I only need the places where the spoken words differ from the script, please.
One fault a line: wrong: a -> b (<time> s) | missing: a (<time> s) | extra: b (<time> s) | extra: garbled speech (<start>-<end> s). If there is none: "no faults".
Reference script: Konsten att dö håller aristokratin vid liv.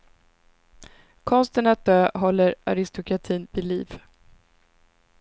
no faults